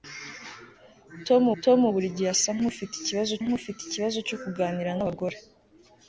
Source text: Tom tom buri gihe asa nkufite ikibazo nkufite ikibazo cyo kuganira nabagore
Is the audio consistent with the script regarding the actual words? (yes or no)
yes